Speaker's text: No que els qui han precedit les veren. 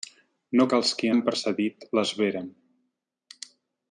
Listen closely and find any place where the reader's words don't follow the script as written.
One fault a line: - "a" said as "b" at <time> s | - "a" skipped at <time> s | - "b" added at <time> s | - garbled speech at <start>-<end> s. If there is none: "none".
none